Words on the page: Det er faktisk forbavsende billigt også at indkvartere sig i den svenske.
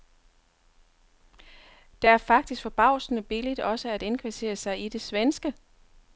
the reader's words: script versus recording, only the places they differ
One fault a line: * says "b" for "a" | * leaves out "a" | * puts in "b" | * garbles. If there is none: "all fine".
* says "det" for "den"